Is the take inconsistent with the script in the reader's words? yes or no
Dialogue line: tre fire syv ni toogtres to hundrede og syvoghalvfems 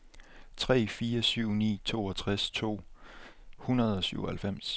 no